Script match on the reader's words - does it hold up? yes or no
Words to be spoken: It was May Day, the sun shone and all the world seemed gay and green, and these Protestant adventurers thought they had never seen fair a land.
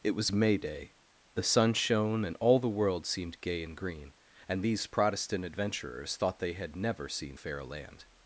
yes